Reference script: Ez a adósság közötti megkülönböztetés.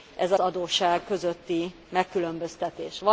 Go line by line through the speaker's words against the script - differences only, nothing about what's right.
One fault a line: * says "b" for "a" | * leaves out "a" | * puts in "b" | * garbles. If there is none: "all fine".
all fine